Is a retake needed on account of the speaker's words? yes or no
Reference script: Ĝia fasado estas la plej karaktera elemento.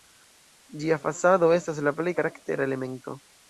no